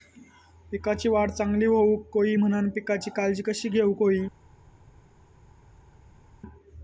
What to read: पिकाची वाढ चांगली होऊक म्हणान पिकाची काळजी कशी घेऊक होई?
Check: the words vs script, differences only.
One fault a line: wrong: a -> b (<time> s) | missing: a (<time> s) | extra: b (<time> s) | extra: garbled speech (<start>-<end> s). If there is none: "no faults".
extra: होई (2.2 s)